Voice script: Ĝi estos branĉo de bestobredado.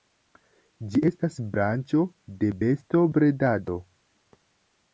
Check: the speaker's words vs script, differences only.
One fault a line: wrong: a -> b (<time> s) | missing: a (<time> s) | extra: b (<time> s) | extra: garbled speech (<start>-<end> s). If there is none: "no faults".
wrong: estos -> estas (1.1 s)